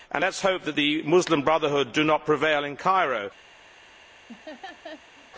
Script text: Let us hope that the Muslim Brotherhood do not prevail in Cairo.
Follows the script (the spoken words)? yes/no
yes